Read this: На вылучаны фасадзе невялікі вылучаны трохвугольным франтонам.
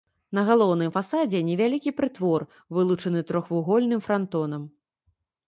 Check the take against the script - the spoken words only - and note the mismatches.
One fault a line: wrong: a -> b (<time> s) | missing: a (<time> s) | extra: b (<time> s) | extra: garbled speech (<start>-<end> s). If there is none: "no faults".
wrong: вылучаны -> галоўным (0.5 s)
extra: прытвор (2.0 s)